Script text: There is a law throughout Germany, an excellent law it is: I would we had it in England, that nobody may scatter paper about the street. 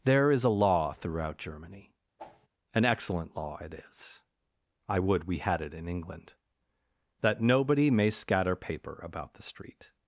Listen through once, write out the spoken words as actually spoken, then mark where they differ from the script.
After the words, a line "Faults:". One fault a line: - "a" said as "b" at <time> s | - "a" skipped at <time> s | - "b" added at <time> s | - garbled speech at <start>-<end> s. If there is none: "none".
There is a law throughout Germany, an excellent law it is: I would we had it in England, that nobody may scatter paper about the street.
Faults:
none